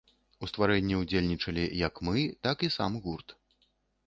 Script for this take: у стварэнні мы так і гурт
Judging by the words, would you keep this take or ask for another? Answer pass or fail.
fail